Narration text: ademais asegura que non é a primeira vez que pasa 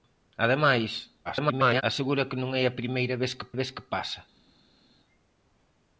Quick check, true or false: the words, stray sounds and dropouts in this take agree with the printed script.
false